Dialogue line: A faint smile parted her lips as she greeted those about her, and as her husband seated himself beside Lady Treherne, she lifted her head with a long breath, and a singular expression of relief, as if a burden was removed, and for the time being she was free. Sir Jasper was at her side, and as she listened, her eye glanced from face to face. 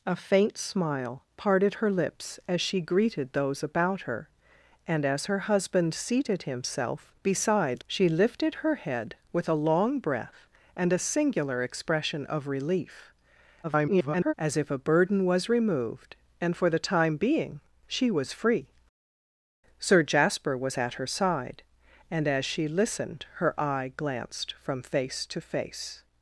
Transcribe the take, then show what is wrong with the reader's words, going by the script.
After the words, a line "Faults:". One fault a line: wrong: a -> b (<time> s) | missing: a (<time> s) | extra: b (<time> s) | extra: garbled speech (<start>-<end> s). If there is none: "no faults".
A faint smile parted her lips as she greeted those about her, and as her husband seated himself beside She lifted her head with a long breath, and a singular expression of relief, [garbled] as if a burden was removed, and for the time being she was free. Sir Jasper was at her side, and as she listened, her eye glanced from face to face.
Faults:
missing: Lady Treherne (7.8 s)
extra: garbled speech (13.6-14.3 s)